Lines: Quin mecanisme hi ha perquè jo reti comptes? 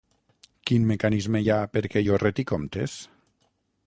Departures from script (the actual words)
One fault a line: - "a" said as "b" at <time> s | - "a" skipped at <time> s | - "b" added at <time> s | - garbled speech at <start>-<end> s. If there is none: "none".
none